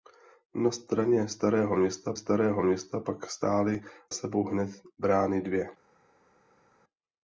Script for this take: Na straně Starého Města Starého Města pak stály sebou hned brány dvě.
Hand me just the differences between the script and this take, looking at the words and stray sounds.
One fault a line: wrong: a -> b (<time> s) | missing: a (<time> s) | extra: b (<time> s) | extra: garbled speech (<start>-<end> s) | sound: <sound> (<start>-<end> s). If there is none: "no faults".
no faults